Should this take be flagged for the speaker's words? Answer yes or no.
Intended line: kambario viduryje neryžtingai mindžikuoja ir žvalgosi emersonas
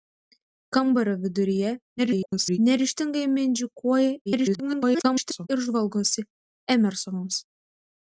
yes